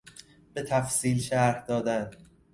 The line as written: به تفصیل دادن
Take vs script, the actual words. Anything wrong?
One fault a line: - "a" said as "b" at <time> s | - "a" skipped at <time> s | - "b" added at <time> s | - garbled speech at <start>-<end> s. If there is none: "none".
- "شرح" added at 1.2 s